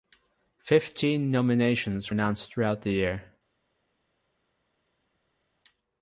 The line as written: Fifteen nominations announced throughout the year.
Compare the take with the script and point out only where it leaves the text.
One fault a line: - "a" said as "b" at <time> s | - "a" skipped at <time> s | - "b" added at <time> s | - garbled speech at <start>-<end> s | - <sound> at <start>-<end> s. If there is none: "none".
none